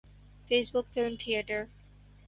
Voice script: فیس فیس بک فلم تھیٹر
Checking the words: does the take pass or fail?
fail